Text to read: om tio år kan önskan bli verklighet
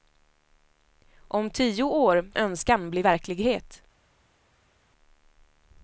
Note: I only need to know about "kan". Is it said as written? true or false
false